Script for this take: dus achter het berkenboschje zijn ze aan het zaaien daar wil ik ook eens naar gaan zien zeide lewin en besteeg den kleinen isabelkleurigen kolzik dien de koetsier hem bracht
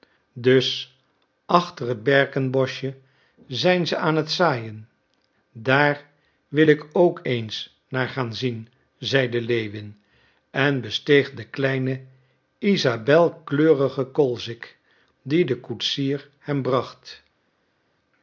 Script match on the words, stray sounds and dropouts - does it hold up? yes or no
yes